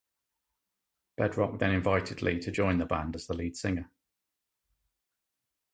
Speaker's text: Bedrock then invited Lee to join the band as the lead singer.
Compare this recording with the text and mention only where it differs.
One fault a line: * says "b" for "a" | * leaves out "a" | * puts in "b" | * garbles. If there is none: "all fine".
all fine